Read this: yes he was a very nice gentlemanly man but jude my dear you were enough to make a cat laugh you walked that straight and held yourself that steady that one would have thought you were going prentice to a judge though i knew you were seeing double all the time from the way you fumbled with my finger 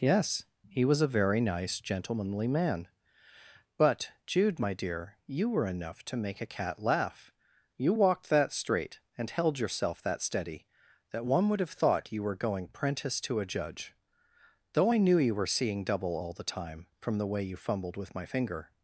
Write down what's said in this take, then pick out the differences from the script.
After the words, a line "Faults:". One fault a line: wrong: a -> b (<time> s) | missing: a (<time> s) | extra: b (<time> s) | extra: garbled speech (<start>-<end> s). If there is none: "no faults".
yes he was a very nice gentlemanly man but jude my dear you were enough to make a cat laugh you walked that straight and held yourself that steady that one would have thought you were going prentice to a judge though i knew you were seeing double all the time from the way you fumbled with my finger
Faults:
no faults